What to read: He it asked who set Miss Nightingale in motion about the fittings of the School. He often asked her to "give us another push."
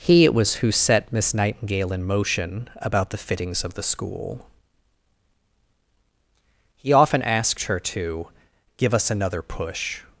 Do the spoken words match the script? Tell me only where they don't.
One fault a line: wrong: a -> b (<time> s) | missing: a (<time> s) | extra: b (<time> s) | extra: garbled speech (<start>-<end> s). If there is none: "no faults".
wrong: asked -> was (0.3 s)